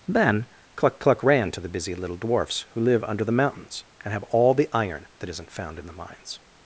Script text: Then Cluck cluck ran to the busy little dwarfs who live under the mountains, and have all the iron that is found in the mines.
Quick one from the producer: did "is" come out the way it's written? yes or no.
no